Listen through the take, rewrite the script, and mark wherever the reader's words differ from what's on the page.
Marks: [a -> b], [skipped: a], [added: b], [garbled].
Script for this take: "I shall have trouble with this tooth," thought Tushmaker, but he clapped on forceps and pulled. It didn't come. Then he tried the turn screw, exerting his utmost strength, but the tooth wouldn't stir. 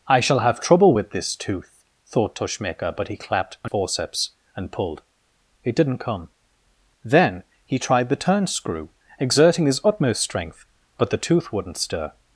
"I shall have trouble with this tooth," thought Tushmaker, but he clapped on forceps and pulled. It didn't come. Then he tried the turn screw, exerting his utmost strength, but the tooth wouldn't stir.